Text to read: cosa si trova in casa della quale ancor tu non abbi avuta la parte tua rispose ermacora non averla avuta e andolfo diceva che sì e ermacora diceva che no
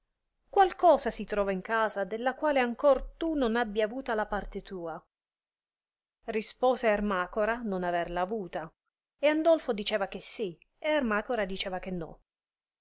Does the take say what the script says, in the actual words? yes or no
yes